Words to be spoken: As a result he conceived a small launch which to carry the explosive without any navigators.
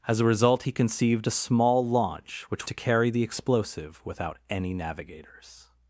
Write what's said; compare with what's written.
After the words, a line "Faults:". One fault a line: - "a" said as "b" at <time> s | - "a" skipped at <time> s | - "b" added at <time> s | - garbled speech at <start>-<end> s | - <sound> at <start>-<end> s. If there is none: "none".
As a result he conceived a small launch which to carry the explosive without any navigators.
Faults:
none